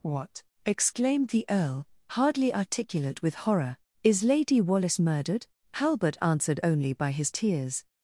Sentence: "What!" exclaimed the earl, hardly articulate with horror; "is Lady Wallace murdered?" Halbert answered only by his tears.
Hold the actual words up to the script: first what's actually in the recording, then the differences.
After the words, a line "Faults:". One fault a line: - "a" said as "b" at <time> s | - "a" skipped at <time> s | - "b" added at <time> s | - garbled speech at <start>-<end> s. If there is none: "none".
"What!" exclaimed the earl, hardly articulate with horror; "is Lady Wallace murdered?" Halbert answered only by his tears.
Faults:
none